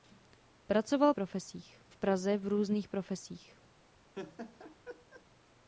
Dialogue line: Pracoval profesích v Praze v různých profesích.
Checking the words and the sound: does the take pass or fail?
fail